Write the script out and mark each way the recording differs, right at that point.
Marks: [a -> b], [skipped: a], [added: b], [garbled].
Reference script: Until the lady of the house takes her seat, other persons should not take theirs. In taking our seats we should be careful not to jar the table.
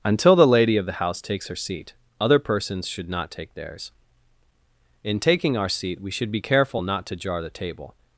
Until the lady of the house takes her seat, other persons should not take theirs. In taking our [seats -> seat] we should be careful not to jar the table.